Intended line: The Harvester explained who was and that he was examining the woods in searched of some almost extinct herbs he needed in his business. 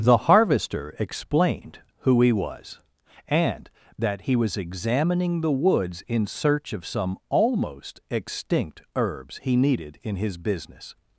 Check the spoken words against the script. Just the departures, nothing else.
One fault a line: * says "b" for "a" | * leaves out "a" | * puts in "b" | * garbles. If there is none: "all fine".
* puts in "he"
* says "search" for "searched"